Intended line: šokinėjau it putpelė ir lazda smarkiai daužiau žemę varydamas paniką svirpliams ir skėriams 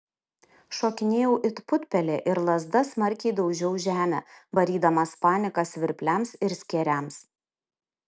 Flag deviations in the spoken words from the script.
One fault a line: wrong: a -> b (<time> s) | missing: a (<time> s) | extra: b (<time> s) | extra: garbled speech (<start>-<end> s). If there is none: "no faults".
no faults